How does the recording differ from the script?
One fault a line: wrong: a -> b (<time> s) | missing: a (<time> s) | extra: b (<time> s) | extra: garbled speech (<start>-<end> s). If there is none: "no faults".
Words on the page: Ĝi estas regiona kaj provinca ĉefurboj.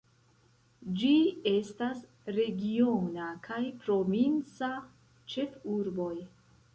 no faults